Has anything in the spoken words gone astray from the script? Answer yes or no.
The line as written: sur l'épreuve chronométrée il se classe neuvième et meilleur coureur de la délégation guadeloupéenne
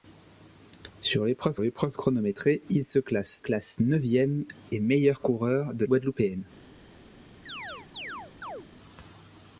yes